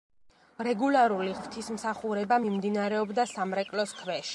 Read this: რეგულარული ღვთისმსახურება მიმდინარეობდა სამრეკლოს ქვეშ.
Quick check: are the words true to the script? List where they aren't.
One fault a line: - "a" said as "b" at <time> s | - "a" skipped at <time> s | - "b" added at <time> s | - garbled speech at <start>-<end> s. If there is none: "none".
none